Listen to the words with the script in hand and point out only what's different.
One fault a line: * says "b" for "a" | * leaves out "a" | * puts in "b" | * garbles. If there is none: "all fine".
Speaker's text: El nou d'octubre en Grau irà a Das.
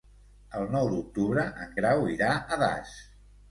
all fine